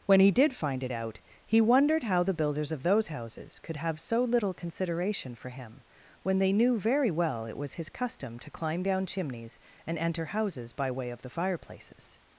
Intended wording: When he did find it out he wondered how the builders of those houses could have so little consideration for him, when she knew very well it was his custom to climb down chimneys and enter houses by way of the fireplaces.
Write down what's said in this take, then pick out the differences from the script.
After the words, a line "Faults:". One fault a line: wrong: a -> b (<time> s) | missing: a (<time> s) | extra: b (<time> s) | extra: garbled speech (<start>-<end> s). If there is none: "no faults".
When he did find it out he wondered how the builders of those houses could have so little consideration for him, when they knew very well it was his custom to climb down chimneys and enter houses by way of the fireplaces.
Faults:
wrong: she -> they (6.4 s)